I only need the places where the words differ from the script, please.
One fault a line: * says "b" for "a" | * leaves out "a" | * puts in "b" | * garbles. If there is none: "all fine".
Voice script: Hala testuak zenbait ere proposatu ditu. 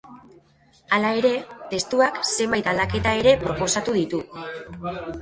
* puts in "ere"
* puts in "aldaketa"